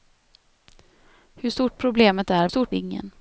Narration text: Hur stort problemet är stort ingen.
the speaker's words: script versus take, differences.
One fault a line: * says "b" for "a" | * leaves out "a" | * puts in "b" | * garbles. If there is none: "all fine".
all fine